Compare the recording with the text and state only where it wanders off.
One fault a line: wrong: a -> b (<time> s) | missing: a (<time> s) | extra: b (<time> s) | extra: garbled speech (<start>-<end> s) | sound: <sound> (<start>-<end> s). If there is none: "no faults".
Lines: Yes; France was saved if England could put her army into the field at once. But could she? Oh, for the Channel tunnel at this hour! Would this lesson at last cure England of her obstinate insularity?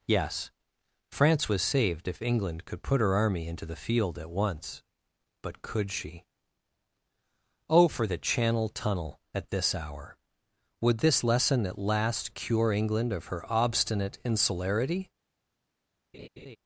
sound: laugh (16.1-16.6 s)